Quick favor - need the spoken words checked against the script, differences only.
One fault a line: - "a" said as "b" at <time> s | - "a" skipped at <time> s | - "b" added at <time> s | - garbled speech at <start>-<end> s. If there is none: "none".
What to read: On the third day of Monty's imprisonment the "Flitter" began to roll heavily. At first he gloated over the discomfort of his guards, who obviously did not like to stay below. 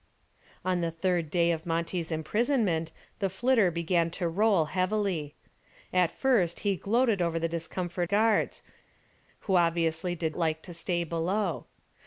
- "of his" skipped at 8.1 s
- "not" skipped at 10.4 s